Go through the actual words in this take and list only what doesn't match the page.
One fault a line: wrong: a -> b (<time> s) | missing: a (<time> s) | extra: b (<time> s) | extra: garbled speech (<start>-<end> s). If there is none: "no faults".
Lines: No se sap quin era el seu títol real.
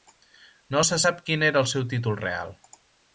no faults